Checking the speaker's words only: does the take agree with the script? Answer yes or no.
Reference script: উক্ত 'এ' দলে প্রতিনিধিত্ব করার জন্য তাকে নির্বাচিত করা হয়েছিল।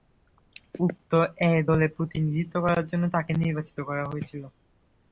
yes